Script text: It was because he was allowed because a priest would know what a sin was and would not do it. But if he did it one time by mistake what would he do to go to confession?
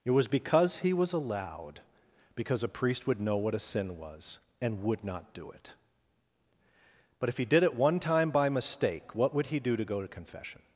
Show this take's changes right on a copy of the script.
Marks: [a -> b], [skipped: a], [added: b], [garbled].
It was because he was allowed because a priest would know what a sin was and would not do it. But if he did it one time by mistake what would he do to go to confession?